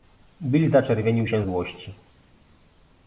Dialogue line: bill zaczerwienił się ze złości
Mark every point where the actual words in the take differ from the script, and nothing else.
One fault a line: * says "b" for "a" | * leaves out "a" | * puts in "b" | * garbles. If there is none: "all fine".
* leaves out "ze"